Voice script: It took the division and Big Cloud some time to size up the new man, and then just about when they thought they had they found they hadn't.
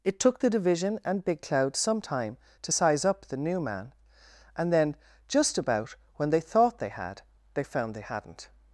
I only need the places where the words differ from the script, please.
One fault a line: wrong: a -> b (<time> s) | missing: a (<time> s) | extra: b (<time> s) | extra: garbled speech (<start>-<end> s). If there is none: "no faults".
no faults